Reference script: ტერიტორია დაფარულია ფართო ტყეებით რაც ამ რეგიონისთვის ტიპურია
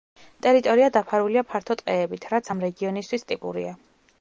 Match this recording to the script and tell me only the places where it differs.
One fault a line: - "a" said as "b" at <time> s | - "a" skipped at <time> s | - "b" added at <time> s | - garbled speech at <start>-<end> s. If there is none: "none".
none